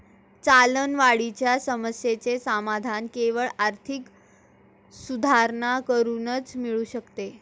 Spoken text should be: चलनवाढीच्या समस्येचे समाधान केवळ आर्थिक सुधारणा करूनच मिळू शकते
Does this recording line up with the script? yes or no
yes